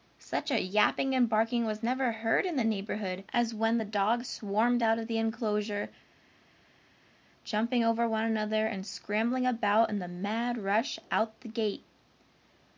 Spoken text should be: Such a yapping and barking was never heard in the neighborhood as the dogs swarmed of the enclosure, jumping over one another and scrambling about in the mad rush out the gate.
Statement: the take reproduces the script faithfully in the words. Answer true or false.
false